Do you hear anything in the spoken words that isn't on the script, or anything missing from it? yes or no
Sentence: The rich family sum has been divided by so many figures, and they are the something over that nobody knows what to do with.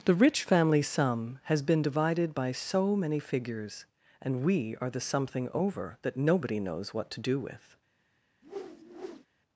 yes